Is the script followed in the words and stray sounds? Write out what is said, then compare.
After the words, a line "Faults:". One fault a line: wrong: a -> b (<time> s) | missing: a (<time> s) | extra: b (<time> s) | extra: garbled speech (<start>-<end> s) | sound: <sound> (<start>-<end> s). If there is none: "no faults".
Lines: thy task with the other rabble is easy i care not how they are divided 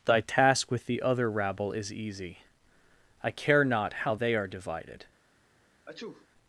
thy task with the other rabble is easy i care not how they are divided
Faults:
sound: sneeze (5.9-6.3 s)